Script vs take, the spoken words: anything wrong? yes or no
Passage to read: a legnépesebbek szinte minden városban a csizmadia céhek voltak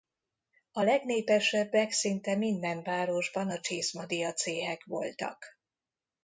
no